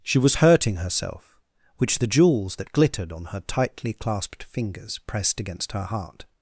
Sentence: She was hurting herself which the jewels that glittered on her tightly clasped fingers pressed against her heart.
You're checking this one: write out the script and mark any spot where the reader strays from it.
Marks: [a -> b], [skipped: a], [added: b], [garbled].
She was hurting herself which the jewels that glittered on her tightly clasped fingers pressed against her heart.